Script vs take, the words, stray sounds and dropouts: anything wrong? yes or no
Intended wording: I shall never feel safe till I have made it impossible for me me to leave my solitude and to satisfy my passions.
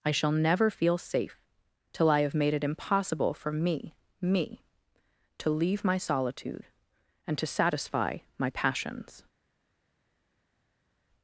no